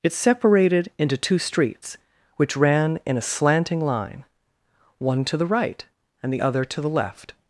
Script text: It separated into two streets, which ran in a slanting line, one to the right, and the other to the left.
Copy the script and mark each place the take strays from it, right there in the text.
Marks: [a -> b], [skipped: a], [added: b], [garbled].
It separated into two streets, which ran in a slanting line, one to the right, and the other to the left.